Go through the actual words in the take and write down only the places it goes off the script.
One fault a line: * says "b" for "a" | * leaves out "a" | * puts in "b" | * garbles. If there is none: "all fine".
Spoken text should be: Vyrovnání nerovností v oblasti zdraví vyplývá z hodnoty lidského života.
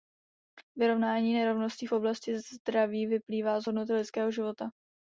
all fine